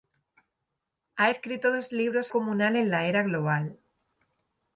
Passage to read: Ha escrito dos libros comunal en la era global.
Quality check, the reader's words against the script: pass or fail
pass